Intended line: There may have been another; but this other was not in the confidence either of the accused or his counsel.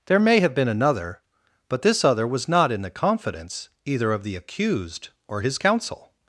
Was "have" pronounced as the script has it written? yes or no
yes